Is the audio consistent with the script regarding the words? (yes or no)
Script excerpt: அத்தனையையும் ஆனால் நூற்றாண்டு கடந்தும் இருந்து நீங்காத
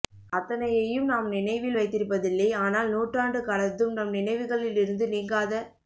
no